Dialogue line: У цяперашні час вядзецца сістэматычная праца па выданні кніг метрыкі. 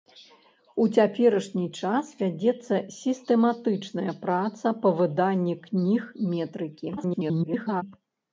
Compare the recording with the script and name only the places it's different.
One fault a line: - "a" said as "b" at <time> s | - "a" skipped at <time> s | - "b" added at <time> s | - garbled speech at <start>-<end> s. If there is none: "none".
- garbled speech at 7.0-7.8 s